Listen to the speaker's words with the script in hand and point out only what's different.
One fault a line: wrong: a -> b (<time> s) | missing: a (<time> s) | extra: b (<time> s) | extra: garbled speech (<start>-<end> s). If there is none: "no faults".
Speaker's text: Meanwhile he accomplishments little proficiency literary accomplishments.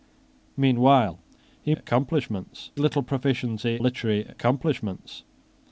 no faults